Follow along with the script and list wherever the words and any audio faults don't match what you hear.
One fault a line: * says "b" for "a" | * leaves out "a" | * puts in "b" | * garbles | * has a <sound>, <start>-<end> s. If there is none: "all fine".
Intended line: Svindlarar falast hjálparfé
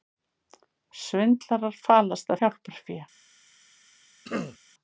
* has a throat clearing, 4.2-4.6 s